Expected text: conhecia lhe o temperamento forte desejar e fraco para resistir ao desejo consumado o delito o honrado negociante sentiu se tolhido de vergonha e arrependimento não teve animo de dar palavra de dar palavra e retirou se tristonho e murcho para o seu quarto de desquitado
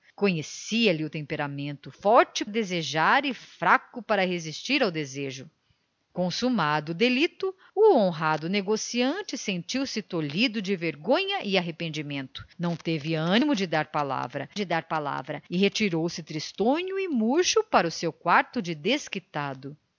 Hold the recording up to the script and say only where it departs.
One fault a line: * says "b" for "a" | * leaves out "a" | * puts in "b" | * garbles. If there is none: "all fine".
all fine